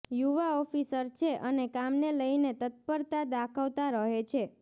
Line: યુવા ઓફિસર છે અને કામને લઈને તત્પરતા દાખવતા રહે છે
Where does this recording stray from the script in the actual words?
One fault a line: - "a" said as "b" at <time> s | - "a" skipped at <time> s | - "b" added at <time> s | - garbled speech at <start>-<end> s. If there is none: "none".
none